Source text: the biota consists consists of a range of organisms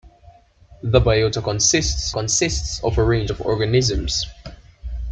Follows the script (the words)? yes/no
yes